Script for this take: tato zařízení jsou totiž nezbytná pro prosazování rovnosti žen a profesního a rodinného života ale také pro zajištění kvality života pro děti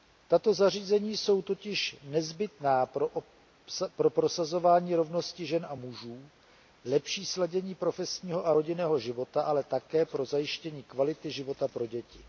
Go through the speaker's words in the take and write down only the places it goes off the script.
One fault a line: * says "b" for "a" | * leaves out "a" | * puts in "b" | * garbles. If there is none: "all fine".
* puts in "mužů lepší sladění"